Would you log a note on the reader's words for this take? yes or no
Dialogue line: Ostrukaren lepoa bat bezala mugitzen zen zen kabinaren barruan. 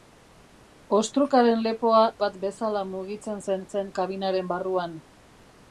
no